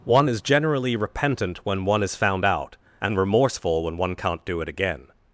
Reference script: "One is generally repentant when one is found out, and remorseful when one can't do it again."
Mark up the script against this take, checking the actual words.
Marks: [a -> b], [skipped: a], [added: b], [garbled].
"One is generally repentant when one is found out, and remorseful when one can't do it again."